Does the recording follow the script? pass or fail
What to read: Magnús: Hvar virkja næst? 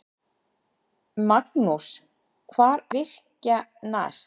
pass